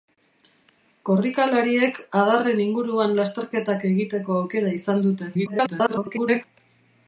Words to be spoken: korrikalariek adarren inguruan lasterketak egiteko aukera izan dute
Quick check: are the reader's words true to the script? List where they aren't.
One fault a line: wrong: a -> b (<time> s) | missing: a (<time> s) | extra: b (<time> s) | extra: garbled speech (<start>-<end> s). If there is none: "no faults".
extra: garbled speech (5.3-6.4 s)